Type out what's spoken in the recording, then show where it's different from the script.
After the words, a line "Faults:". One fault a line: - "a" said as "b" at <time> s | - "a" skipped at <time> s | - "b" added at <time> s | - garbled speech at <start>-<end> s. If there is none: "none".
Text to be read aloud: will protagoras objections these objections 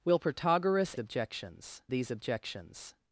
will protagoras objections these objections
Faults:
none